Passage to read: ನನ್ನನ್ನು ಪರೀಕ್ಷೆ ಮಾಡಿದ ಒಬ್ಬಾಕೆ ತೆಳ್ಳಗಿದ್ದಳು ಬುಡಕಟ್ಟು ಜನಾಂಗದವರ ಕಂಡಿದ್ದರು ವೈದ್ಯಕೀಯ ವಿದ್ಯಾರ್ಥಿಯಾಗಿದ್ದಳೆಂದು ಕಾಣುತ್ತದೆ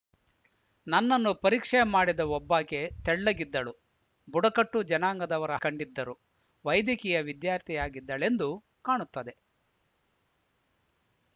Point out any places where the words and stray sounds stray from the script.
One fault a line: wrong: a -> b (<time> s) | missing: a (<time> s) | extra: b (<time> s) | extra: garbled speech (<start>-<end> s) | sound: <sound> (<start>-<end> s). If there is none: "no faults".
no faults